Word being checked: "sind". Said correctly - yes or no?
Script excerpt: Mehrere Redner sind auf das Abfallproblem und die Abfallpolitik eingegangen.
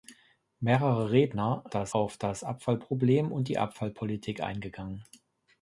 no